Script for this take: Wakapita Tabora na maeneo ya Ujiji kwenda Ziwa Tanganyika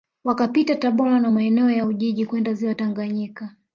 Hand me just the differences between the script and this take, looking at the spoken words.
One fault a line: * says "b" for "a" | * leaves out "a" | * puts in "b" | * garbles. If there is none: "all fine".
all fine